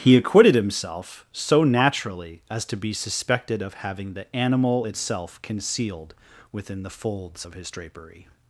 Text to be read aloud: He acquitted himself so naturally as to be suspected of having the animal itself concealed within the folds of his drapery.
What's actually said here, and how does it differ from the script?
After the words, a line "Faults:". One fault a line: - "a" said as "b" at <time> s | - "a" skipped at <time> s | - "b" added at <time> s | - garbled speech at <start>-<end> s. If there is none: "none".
He acquitted himself so naturally as to be suspected of having the animal itself concealed within the folds of his drapery.
Faults:
none